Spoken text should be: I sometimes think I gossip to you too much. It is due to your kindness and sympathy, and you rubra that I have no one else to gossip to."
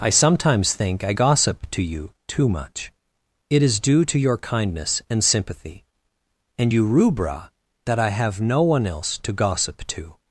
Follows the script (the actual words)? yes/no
yes